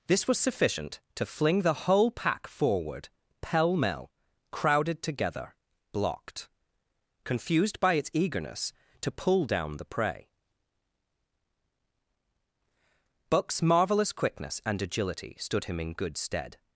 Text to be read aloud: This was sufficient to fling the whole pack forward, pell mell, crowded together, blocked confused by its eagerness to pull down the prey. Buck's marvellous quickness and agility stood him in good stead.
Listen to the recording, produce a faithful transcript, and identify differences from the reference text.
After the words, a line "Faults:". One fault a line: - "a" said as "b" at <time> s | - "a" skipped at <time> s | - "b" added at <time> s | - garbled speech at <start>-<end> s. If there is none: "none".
This was sufficient to fling the whole pack forward, pell mell, crowded together, blocked confused by its eagerness to pull down the prey. Buck's marvellous quickness and agility stood him in good stead.
Faults:
none